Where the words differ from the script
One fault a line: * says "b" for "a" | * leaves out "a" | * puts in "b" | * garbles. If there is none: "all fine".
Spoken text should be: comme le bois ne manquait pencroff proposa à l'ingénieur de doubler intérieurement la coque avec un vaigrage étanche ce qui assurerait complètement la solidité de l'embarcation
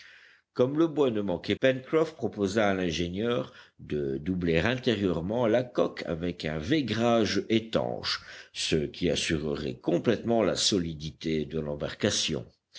all fine